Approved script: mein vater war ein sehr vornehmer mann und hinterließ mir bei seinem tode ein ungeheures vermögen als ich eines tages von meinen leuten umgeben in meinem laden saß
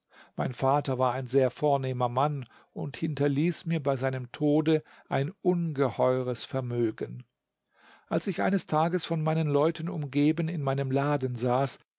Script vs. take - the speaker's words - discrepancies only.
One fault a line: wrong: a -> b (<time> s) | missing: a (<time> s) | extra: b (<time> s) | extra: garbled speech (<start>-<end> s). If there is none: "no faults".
no faults